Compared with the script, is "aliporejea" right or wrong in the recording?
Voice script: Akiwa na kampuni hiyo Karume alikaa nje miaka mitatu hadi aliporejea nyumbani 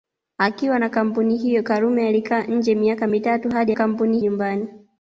wrong